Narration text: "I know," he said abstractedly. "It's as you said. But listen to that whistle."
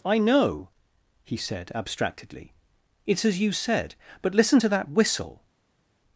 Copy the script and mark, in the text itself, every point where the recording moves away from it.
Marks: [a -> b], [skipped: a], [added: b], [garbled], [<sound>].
"I know," he said abstractedly. "It's as you said. But listen to that whistle."